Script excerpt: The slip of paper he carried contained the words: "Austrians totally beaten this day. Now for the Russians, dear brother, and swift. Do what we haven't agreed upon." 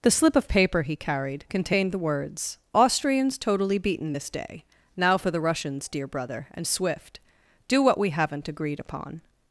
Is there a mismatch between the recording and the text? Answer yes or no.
no